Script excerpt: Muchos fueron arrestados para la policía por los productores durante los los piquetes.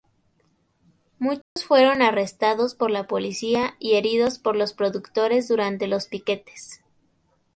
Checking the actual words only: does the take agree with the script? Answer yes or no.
no